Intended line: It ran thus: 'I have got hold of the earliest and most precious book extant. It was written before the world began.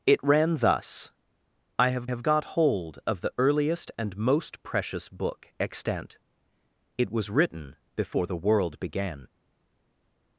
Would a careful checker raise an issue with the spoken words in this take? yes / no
yes